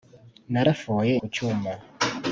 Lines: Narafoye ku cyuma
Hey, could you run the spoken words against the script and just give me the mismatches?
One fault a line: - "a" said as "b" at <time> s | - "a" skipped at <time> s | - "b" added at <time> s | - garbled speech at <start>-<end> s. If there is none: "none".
none